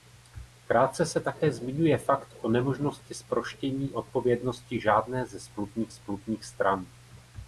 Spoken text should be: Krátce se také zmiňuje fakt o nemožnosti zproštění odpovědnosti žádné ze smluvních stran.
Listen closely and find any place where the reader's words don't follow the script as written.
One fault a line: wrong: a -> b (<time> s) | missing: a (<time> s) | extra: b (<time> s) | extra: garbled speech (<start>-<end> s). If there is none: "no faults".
extra: smluvních (5.9 s)